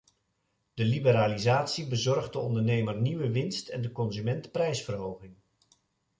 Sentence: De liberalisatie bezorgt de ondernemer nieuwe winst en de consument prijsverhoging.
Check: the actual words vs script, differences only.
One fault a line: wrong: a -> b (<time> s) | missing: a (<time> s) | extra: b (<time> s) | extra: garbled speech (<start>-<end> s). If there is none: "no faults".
no faults